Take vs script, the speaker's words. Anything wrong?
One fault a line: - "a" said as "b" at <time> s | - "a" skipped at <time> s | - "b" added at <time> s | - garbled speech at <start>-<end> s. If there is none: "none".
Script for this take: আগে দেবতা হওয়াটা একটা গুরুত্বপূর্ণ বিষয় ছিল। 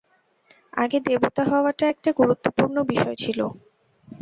none